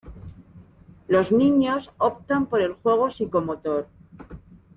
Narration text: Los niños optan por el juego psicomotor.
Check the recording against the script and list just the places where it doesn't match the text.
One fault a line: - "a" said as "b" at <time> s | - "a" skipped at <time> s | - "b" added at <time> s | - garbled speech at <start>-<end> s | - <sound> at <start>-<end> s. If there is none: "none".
none